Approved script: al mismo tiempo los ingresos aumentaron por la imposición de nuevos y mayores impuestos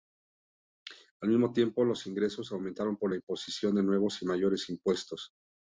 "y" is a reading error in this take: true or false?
false